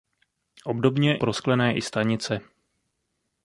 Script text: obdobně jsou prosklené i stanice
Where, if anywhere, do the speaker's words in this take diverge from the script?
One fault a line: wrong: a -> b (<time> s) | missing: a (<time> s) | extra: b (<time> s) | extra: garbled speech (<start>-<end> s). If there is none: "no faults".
missing: jsou (1.2 s)